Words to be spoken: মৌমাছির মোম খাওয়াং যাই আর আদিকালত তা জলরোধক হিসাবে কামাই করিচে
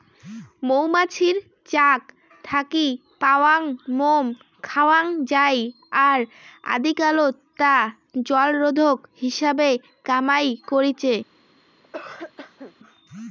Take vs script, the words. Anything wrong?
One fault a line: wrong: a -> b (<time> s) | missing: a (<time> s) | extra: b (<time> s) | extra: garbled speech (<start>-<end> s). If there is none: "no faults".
extra: চাক থাকি পাওয়াং (1.7 s)